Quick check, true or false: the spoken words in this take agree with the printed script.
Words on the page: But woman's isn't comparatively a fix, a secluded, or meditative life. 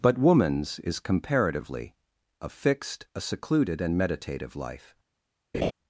false